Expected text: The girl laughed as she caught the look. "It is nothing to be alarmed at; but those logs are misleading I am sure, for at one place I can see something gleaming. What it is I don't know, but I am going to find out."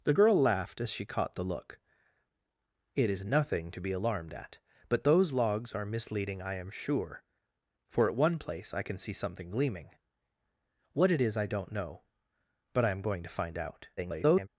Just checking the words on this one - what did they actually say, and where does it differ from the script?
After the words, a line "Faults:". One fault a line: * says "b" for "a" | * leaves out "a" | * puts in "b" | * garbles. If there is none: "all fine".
The girl laughed as she caught the look. "It is nothing to be alarmed at; but those logs are misleading I am sure, for at one place I can see something gleaming. What it is I don't know, but I am going to find out." [garbled]
Faults:
* garbles